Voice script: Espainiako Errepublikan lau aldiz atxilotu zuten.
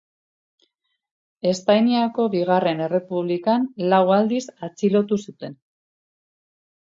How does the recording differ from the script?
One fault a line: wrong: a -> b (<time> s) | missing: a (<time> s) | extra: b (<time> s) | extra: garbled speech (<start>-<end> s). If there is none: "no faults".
extra: Bigarren (2.4 s)